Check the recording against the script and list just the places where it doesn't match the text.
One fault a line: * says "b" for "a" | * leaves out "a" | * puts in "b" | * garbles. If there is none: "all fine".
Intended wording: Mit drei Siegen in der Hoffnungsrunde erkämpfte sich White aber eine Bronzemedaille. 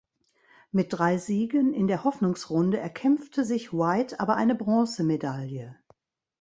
all fine